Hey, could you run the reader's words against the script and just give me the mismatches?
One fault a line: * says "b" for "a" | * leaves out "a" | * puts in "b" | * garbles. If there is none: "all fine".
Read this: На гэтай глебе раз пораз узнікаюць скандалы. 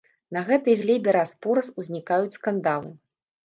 all fine